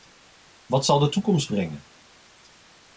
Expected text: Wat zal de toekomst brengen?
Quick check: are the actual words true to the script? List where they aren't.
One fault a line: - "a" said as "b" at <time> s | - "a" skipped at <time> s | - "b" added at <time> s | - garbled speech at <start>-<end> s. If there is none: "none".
none